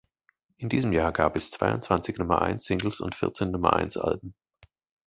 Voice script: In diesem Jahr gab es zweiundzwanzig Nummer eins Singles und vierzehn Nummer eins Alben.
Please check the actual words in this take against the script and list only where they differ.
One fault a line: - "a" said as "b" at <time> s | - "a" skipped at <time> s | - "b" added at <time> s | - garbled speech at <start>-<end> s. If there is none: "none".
none